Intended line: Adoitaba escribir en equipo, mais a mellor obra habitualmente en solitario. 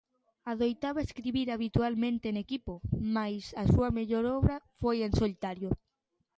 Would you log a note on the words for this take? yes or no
yes